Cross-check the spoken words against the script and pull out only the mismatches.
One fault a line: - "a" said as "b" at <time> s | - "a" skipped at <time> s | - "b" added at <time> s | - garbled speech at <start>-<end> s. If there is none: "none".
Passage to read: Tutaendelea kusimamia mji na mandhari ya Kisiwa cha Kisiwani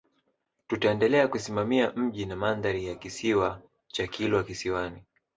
- "Kilwa" added at 4.1 s